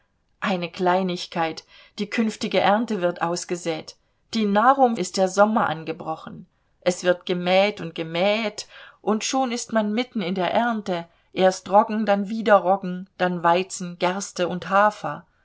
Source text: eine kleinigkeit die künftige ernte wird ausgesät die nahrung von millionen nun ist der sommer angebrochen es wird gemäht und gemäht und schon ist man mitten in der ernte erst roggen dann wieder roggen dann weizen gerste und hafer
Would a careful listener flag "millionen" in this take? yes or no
yes